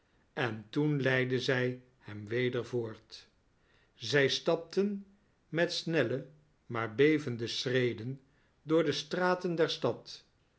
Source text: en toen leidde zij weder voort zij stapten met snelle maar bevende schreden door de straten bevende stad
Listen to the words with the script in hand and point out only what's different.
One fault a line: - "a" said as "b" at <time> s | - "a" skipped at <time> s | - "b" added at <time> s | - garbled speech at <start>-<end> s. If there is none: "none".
- "hem" added at 2.0 s
- "bevende" said as "der" at 9.6 s